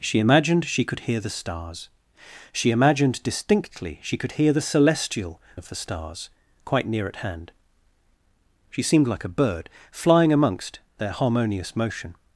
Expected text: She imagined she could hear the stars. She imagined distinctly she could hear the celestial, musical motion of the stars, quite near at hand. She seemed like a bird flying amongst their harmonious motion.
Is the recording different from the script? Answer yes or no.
yes